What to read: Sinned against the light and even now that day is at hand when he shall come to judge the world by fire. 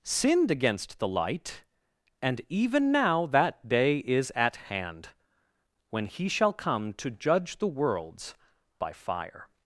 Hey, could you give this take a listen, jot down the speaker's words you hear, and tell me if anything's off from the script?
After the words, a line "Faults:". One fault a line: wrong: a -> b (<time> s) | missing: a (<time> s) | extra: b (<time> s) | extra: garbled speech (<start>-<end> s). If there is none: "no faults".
Sinned against the light and even now that day is at hand when he shall come to judge the worlds by fire.
Faults:
wrong: world -> worlds (7.7 s)